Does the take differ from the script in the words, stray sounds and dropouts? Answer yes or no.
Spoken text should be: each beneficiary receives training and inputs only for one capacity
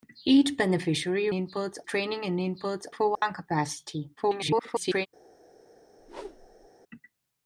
yes